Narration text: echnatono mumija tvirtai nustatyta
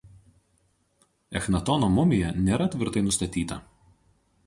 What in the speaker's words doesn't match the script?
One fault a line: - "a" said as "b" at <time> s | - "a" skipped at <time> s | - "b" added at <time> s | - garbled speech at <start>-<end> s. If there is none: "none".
- "nėra" added at 2.5 s